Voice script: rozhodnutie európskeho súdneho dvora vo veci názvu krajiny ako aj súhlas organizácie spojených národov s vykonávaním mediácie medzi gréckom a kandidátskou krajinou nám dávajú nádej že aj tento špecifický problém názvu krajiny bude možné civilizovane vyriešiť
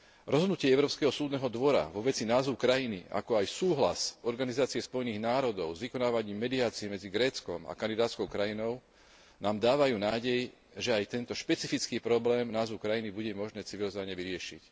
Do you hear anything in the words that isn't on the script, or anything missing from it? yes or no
no